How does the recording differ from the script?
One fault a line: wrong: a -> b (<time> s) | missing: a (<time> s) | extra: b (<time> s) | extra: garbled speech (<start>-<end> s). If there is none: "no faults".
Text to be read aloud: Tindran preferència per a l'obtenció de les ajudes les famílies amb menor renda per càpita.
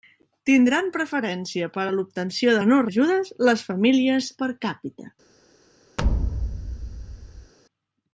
wrong: les -> menor (2.6 s)
missing: amb menor renda (4.3 s)